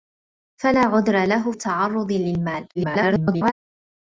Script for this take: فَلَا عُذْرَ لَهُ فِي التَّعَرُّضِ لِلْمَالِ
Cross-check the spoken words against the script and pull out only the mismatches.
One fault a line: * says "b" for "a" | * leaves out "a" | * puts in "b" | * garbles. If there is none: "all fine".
* leaves out "فِي"
* garbles